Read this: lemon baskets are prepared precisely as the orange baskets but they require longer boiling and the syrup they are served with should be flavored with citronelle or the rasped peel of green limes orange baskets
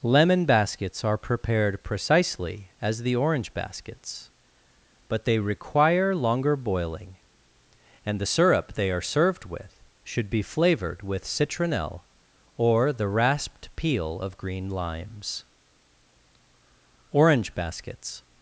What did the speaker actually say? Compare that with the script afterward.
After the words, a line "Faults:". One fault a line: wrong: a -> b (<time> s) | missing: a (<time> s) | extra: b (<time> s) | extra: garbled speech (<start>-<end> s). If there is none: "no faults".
lemon baskets are prepared precisely as the orange baskets but they require longer boiling and the syrup they are served with should be flavored with citronelle or the rasped peel of green limes orange baskets
Faults:
no faults